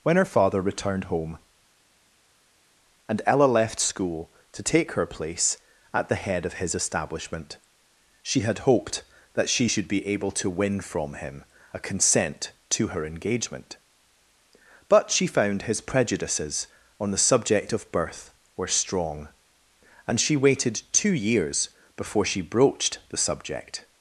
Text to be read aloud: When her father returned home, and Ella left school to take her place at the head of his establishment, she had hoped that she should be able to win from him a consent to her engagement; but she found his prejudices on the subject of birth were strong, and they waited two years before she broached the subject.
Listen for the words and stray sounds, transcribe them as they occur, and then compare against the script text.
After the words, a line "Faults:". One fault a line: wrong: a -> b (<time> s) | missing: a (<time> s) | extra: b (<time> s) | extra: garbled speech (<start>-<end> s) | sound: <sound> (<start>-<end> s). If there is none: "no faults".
When her father returned home, and Ella left school to take her place at the head of his establishment, she had hoped that she should be able to win from him a consent to her engagement; but she found his prejudices on the subject of birth were strong, and she waited two years before she broached the subject.
Faults:
wrong: they -> she (20.2 s)